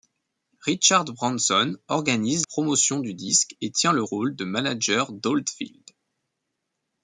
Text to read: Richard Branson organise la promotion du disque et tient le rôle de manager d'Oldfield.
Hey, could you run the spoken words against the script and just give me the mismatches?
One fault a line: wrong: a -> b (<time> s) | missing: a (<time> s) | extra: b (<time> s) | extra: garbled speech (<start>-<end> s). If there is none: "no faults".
missing: la (2.5 s)